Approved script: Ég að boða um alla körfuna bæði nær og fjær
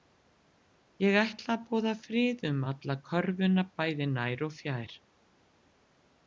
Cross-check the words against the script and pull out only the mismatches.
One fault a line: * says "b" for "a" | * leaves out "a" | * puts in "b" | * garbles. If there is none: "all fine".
* puts in "ætla"
* puts in "frið"